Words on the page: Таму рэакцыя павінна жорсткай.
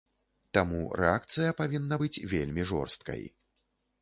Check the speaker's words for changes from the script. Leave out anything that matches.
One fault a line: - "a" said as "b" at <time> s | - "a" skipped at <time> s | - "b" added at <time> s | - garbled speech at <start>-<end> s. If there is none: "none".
- "быць вельмі" added at 2.0 s